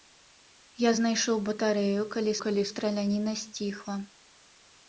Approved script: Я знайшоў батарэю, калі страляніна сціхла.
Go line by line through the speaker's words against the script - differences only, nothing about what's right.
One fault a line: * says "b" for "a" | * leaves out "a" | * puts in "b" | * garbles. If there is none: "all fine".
* puts in "калі"